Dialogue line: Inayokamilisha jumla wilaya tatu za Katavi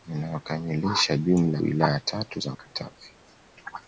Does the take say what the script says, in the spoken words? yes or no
yes